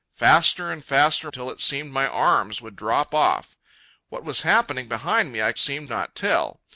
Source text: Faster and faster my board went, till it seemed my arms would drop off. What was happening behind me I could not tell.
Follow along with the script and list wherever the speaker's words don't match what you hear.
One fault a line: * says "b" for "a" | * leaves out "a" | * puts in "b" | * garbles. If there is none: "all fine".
* leaves out "my board went"
* says "seemed" for "could"